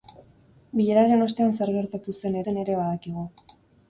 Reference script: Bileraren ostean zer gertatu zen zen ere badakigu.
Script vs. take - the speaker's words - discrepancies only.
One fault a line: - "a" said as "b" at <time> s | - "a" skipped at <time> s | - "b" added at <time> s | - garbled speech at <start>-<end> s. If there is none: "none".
none